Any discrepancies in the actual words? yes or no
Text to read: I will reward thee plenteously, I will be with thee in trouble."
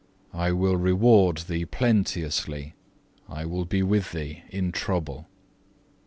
no